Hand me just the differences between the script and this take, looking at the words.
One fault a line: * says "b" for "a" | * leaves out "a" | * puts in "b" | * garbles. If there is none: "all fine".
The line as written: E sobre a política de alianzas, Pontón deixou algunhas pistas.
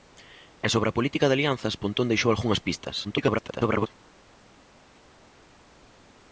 * garbles